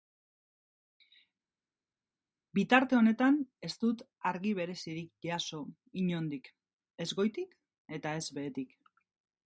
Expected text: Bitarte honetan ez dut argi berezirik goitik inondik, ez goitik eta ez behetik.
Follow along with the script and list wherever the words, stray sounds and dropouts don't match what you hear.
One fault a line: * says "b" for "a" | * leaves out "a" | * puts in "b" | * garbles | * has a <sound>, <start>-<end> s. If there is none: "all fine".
* says "jaso" for "goitik"